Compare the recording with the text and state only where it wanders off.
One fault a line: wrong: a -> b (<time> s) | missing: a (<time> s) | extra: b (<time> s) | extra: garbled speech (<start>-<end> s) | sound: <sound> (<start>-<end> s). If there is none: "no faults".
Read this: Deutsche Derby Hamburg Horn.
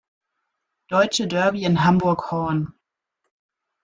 extra: in (1.6 s)